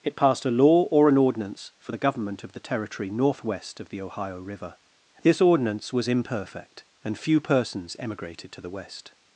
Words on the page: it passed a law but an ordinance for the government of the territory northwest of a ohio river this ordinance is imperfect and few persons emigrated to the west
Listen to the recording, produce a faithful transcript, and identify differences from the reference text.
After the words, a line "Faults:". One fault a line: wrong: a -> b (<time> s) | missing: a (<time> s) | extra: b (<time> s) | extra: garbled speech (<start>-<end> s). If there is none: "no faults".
it passed a law or an ordinance for the government of the territory northwest of the ohio river this ordinance was imperfect and few persons emigrated to the west
Faults:
wrong: but -> or (0.9 s)
wrong: a -> the (3.9 s)
wrong: is -> was (5.9 s)